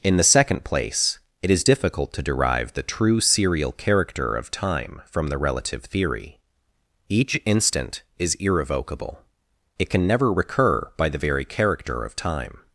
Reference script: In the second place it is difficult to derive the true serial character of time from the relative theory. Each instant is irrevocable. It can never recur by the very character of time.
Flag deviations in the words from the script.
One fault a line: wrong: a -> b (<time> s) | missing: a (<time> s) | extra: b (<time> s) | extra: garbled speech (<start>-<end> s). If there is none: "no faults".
no faults